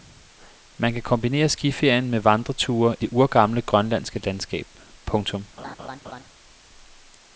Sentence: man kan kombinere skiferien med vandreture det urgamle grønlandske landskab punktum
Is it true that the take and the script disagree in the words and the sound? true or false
true